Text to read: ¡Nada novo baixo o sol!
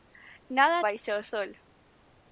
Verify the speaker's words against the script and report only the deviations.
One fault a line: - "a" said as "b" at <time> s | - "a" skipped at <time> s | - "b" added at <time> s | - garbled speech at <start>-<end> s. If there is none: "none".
- "novo" skipped at 0.8 s